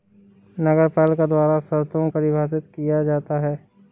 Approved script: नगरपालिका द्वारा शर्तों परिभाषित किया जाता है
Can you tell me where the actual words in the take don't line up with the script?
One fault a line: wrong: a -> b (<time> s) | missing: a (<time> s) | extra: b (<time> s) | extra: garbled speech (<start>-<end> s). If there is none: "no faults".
no faults